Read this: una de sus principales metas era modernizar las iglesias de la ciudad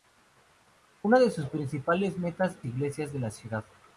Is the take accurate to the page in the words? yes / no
no